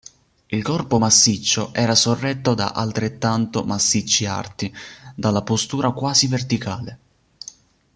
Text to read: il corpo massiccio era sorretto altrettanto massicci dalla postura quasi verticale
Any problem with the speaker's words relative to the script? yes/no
yes